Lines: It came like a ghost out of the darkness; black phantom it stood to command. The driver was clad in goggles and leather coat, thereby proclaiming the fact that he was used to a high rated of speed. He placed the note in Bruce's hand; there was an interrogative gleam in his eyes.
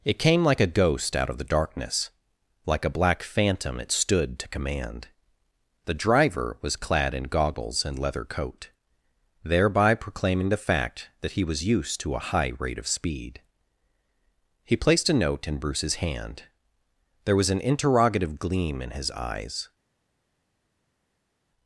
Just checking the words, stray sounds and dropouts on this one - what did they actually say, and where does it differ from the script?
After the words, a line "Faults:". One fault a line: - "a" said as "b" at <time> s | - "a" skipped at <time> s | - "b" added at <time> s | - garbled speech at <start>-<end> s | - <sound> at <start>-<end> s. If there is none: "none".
It came like a ghost out of the darkness; like a black phantom it stood to command. The driver was clad in goggles and leather coat, thereby proclaiming the fact that he was used to a high rate of speed. He placed a note in Bruce's hand; there was an interrogative gleam in his eyes.
Faults:
- "like a" added at 2.6 s
- "rated" said as "rate" at 12.6 s
- "the" said as "a" at 15.1 s